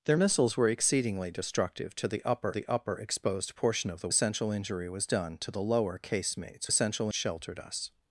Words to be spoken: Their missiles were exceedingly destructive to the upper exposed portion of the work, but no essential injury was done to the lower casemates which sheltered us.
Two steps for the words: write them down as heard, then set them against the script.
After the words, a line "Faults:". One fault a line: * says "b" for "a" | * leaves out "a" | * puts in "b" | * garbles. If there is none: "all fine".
Their missiles were exceedingly destructive to the upper the upper exposed portion of the essential injury was done to the lower casemates essential sheltered us.
Faults:
* puts in "the upper"
* leaves out "work but no"
* says "essential" for "which"